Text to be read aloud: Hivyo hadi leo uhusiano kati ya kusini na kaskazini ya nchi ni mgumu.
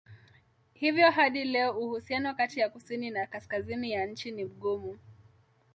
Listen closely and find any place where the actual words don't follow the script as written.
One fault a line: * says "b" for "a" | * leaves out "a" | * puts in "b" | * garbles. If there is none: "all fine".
all fine